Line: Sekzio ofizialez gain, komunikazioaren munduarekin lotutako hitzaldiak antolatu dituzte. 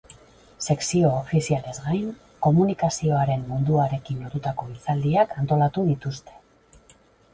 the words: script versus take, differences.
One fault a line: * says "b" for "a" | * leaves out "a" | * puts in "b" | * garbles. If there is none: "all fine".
all fine